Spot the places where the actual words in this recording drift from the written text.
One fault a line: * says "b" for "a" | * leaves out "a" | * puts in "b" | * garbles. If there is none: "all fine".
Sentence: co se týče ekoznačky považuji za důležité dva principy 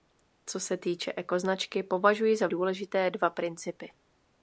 all fine